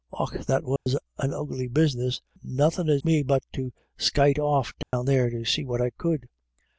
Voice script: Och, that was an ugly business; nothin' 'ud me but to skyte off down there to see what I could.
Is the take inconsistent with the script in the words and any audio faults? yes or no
yes